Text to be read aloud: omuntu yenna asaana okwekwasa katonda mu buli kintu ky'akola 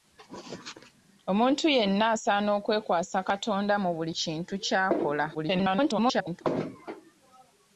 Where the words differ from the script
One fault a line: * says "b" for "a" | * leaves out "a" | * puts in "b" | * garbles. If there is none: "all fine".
* garbles